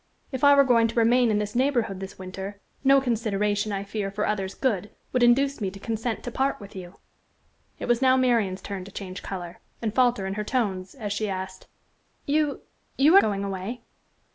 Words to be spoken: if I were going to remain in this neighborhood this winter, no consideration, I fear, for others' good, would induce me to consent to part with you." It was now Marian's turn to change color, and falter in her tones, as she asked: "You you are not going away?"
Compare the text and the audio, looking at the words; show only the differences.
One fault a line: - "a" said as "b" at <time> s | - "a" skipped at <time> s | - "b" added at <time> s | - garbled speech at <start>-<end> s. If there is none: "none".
- "not" skipped at 13.2 s